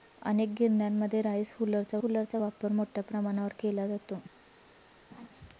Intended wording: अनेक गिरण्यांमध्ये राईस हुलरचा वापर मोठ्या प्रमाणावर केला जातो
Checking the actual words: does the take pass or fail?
fail